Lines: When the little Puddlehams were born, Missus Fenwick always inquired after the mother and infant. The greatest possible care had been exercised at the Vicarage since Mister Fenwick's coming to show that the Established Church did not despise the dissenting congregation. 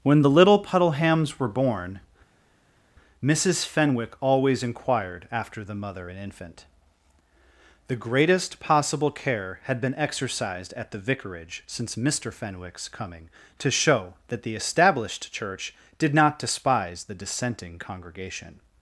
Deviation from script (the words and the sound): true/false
false